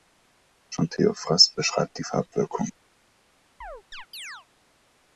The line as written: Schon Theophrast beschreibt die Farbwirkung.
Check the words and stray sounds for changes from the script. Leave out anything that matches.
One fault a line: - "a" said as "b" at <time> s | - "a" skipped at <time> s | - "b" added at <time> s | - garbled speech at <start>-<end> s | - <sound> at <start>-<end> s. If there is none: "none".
- chirp at 3.6-4.5 s